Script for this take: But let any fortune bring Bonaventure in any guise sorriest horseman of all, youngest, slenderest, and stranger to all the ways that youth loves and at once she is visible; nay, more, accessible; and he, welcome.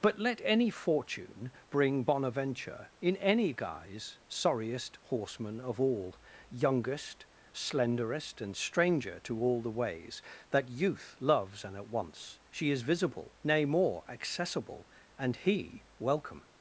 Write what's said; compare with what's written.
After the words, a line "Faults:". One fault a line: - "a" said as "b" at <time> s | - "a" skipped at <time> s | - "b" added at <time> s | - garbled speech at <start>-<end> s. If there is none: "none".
But let any fortune bring Bonaventure in any guise sorriest horseman of all, youngest, slenderest, and stranger to all the ways that youth loves and at once she is visible; nay, more, accessible; and he, welcome.
Faults:
none